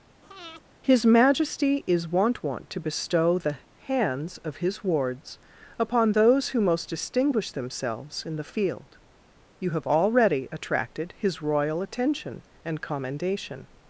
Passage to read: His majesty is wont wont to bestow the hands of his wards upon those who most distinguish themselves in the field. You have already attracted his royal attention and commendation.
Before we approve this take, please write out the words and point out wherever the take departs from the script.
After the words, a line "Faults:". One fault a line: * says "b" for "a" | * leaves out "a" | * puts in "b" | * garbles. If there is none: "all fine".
His majesty is wont wont to bestow the hands of his wards upon those who most distinguish themselves in the field. You have already attracted his royal attention and commendation.
Faults:
all fine